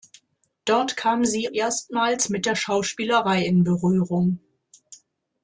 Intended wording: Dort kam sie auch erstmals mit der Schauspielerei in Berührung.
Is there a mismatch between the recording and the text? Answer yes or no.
yes